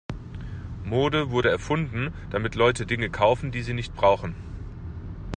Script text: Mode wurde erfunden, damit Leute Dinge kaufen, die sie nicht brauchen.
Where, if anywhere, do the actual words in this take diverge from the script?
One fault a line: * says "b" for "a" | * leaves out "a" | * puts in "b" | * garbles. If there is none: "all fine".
all fine